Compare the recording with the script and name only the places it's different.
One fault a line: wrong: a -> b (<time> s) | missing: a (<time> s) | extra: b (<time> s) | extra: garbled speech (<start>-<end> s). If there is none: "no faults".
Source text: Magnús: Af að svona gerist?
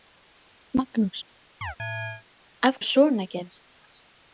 no faults